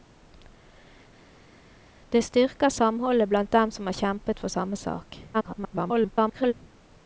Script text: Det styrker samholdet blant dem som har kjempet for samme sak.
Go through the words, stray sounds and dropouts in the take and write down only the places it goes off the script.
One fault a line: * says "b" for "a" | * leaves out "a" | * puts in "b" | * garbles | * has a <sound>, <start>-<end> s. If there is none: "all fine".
* garbles